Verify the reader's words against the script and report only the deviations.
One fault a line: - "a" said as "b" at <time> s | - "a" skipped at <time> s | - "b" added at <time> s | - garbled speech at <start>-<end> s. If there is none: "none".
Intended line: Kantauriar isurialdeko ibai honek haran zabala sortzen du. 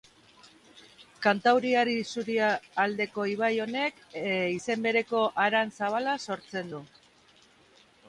- "izen bereko" added at 4.5 s